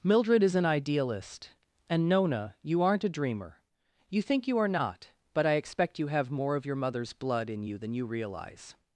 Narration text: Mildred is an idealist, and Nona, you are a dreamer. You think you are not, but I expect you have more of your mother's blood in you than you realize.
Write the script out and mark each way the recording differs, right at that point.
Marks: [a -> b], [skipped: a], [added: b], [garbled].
Mildred is an idealist, and Nona, you [are -> aren't] a dreamer. You think you are not, but I expect you have more of your mother's blood in you than you realize.